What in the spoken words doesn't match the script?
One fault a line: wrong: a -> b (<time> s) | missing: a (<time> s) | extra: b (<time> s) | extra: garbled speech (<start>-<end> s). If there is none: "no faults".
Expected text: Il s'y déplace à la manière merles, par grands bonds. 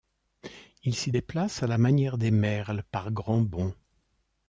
extra: des (2.2 s)